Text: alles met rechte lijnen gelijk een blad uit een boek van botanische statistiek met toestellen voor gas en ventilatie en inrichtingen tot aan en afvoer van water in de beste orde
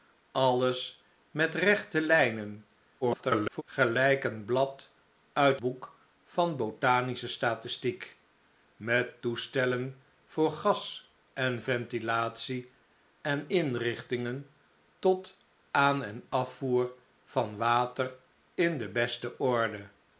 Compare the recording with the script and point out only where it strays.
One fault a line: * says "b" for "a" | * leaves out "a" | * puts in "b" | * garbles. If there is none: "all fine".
* garbles
* leaves out "een"